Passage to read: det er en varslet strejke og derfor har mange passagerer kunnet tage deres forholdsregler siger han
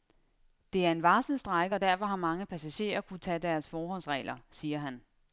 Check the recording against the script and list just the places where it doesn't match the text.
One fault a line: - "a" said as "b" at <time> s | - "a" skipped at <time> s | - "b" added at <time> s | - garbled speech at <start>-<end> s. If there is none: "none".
none